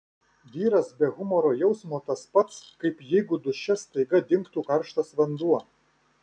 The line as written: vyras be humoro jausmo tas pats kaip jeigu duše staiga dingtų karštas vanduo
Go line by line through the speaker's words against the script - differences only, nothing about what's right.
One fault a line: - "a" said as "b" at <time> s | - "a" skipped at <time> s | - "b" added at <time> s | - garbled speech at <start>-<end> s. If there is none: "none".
none